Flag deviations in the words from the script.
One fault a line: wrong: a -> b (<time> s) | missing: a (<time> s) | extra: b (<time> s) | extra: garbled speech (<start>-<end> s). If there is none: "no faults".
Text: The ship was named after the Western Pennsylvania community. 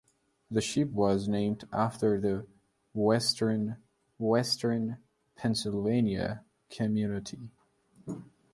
extra: Western (4.2 s)